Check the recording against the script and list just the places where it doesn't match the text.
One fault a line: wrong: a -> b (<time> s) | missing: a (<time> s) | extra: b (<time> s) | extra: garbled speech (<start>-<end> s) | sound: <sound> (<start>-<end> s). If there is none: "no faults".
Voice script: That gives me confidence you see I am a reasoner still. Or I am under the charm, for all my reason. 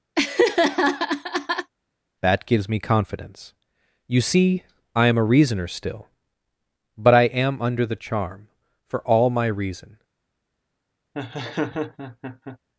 sound: laugh (0.2-1.7 s)
wrong: Or -> But (7.0 s)
sound: laugh (11.1-12.6 s)